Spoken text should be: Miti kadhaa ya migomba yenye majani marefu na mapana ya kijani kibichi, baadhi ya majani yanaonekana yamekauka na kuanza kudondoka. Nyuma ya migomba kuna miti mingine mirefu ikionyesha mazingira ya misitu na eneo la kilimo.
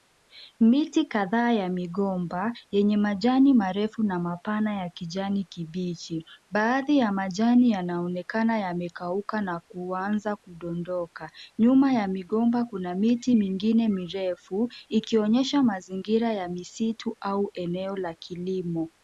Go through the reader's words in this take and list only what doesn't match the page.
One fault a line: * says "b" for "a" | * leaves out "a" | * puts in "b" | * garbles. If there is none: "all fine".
* says "au" for "na"